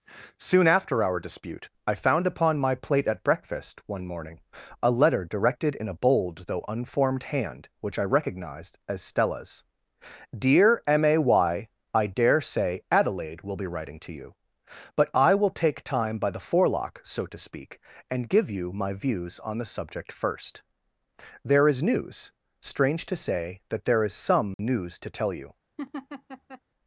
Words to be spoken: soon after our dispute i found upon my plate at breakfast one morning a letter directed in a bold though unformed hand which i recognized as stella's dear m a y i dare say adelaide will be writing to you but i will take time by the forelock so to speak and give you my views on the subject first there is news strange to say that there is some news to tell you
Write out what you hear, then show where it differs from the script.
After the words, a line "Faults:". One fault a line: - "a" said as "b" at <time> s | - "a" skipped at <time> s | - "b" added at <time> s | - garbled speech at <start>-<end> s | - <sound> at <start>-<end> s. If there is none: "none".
soon after our dispute i found upon my plate at breakfast one morning a letter directed in a bold though unformed hand which i recognized as stella's dear m a y i dare say adelaide will be writing to you but i will take time by the forelock so to speak and give you my views on the subject first there is news strange to say that there is some news to tell you
Faults:
- dropout at 24.5-24.6 s
- laugh at 25.8-26.6 s